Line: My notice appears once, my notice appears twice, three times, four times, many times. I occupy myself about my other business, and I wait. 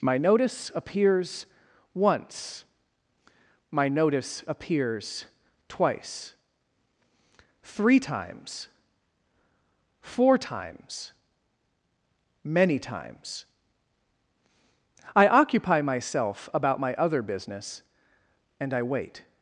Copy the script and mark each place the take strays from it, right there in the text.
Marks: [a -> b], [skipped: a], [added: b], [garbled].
My notice appears once, my notice appears twice, three times, four times, many times. I occupy myself about my other business, and I wait.